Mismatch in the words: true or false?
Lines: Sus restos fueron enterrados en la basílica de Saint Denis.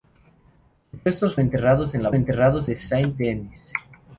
true